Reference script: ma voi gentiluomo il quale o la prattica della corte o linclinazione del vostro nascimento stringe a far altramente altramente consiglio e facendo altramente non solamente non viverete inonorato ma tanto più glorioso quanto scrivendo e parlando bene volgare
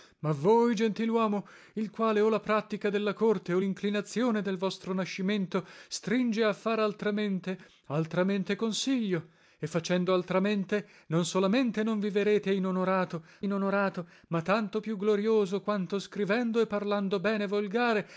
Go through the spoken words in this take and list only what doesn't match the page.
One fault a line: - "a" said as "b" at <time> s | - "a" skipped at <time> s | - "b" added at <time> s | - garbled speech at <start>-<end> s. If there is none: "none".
- "inonorato" added at 13.4 s